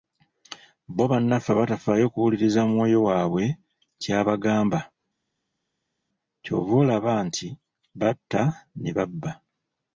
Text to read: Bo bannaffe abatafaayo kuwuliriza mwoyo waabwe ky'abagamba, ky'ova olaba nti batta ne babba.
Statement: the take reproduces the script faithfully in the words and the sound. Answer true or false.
true